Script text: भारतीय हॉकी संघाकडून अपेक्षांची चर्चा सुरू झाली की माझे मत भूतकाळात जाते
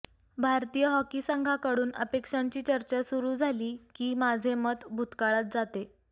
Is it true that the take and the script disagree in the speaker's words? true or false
false